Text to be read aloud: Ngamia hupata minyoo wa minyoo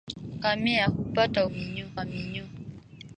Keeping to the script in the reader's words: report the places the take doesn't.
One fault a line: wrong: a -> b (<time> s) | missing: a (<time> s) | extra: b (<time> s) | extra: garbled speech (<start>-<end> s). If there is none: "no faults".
no faults